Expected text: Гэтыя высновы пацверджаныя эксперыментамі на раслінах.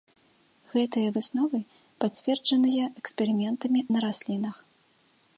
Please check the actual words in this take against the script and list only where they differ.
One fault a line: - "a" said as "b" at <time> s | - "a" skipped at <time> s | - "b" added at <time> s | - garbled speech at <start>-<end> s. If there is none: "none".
none